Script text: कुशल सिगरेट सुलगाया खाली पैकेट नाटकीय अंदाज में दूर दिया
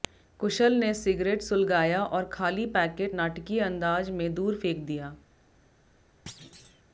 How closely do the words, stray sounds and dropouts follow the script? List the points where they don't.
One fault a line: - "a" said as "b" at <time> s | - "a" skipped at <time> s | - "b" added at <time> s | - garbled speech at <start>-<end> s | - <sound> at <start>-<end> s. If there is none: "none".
- "ने" added at 0.8 s
- "और" added at 2.0 s
- "फेंक" added at 4.6 s
- thud at 6.3-6.8 s